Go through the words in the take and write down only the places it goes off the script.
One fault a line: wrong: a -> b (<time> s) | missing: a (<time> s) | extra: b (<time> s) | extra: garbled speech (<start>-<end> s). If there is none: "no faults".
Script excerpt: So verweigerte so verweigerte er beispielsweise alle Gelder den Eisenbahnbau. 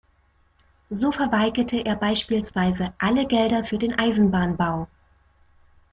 missing: so verweigerte (1.9 s)
extra: für (3.6 s)